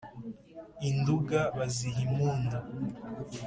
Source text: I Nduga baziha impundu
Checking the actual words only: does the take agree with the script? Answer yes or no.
yes